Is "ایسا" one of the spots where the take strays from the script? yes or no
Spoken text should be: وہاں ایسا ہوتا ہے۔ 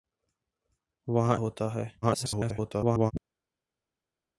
yes